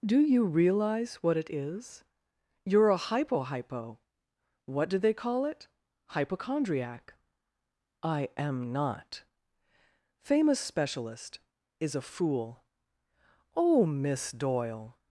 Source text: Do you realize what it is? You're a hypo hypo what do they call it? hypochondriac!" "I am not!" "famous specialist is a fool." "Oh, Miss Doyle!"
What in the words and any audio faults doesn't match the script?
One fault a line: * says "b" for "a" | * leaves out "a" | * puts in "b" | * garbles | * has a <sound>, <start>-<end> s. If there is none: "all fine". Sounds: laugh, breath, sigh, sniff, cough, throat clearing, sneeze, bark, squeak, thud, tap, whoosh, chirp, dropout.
all fine